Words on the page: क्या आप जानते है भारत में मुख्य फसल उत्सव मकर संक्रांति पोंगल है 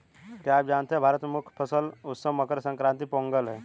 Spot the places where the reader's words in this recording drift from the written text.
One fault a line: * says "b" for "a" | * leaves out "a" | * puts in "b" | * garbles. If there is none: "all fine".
all fine